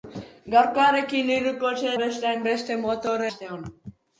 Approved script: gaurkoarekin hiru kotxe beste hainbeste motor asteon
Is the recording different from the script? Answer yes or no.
no